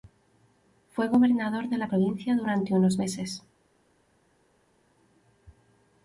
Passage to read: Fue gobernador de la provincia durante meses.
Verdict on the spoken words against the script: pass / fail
fail